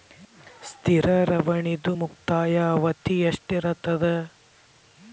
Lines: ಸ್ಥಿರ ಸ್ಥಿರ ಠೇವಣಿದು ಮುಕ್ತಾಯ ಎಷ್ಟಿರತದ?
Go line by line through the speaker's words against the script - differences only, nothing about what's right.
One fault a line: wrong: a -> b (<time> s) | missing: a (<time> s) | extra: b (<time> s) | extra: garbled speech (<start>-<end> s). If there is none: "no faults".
missing: ಸ್ಥಿರ (1.1 s)
extra: ಅವಧಿ (2.7 s)